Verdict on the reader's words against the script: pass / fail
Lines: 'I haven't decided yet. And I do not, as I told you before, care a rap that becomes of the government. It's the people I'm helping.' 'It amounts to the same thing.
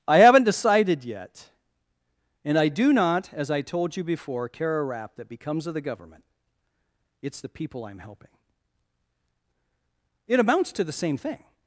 pass